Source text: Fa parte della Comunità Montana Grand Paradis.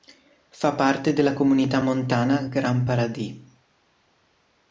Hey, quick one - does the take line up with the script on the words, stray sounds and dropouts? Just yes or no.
yes